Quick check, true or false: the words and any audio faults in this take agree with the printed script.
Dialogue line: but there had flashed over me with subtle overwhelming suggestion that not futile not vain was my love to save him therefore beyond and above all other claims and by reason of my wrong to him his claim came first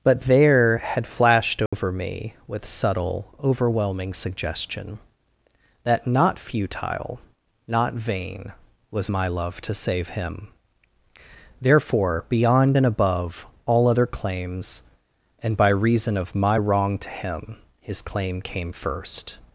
false